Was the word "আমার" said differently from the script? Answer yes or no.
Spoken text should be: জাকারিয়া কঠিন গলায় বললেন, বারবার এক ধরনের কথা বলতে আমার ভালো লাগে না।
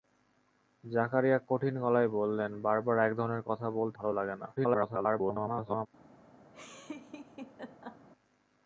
yes